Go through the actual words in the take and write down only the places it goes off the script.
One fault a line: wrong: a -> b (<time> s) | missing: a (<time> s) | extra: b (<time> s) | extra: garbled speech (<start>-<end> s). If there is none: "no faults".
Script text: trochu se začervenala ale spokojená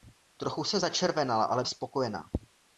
no faults